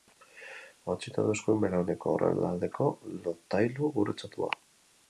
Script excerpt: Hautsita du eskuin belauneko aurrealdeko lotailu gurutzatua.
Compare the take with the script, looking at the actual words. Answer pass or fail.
pass